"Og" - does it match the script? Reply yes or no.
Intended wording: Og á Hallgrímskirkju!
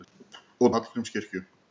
yes